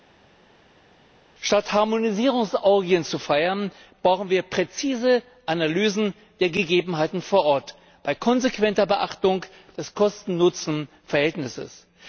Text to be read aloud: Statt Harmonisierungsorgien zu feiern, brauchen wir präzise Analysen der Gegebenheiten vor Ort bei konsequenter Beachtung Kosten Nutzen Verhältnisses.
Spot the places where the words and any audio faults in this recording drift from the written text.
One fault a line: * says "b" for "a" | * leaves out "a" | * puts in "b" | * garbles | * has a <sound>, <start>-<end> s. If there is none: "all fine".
* puts in "des"